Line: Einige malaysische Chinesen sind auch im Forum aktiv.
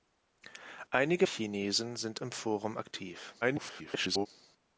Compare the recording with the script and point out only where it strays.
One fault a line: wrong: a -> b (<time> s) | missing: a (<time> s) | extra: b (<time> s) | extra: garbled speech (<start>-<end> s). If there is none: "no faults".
missing: malaysische (1.3 s)
missing: auch (2.2 s)
extra: garbled speech (3.4-4.3 s)